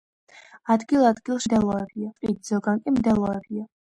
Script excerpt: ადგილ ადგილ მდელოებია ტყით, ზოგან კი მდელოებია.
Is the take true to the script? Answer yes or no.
yes